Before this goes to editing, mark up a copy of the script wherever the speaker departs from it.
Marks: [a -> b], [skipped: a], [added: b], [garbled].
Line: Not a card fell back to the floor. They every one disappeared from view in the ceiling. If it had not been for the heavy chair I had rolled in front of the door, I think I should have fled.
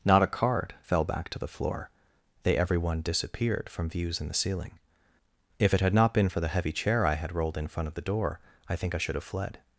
Not a card fell back to the floor. They every one disappeared from [view -> views] in the ceiling. If it had not been for the heavy chair I had rolled in front of the door, I think I should have fled.